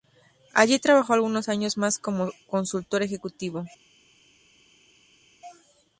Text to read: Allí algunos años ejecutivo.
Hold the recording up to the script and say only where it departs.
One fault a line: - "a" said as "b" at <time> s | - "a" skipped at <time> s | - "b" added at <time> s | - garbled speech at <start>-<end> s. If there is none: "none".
- "trabajó" added at 0.8 s
- "más como consultor" added at 1.8 s